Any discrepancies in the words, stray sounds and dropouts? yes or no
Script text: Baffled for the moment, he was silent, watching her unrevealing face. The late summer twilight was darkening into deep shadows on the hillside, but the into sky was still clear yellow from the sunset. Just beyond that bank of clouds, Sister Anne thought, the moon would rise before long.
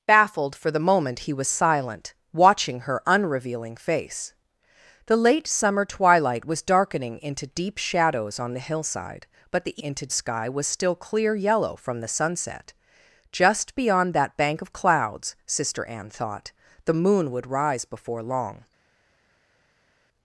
no